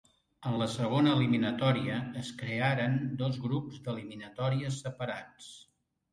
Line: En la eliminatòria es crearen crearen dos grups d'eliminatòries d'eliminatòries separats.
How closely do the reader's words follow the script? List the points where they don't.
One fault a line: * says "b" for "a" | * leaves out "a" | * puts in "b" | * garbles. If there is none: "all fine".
* puts in "segona"
* leaves out "crearen"
* leaves out "d'eliminatòries"